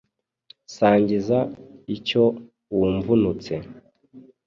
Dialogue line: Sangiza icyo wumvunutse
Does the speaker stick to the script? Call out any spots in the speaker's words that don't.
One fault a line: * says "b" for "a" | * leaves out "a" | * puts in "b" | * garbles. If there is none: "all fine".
all fine